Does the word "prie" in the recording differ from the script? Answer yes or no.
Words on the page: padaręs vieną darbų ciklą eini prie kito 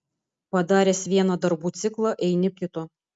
yes